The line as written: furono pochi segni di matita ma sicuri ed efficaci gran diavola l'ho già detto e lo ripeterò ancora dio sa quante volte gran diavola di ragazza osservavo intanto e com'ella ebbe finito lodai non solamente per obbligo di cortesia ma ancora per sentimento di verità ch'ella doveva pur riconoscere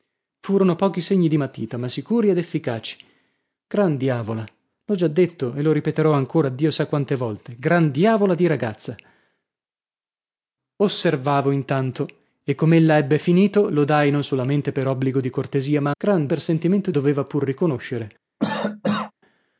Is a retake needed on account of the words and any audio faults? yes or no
yes